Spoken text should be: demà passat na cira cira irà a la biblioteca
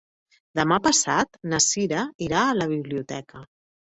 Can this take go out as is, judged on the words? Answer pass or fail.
fail